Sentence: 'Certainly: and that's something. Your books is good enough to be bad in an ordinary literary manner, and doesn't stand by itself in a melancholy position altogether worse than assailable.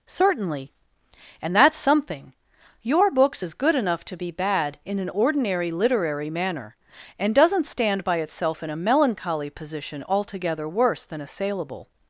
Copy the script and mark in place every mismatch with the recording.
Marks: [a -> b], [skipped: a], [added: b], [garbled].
'Certainly: and that's something. Your books is good enough to be bad in an ordinary literary manner, and doesn't stand by itself in a melancholy position altogether worse than assailable.